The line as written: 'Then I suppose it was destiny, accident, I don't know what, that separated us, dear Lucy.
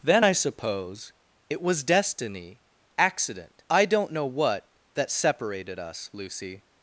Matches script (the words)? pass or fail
fail